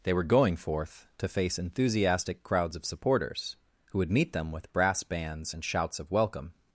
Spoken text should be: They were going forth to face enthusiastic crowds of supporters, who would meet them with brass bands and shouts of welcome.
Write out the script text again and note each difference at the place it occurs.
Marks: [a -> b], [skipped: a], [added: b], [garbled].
They were going forth to face enthusiastic crowds of supporters, who would meet them with brass bands and shouts of welcome.